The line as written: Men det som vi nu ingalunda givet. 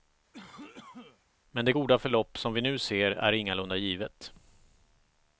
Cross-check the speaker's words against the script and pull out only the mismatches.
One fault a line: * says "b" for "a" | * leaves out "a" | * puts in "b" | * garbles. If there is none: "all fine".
* puts in "goda förlopp"
* puts in "ser är"